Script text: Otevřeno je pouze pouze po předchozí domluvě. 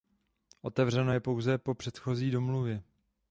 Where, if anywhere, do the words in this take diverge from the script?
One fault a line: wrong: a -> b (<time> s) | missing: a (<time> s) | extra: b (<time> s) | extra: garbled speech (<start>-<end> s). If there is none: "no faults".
missing: pouze (1.6 s)